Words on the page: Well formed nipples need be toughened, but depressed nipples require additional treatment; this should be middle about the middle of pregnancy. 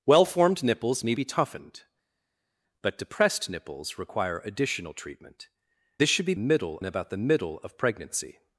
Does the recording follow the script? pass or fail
pass